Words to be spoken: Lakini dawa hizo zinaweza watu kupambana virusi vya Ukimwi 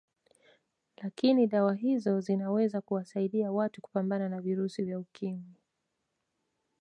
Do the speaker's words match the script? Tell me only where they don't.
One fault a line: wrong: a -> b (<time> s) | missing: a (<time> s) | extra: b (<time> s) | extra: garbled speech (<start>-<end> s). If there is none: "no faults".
extra: kuwasaidia (2.8 s)
extra: na (4.3 s)